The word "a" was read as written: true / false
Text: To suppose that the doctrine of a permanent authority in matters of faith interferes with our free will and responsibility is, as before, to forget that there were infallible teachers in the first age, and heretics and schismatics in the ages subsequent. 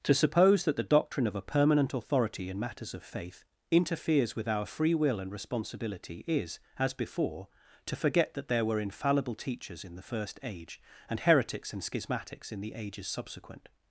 true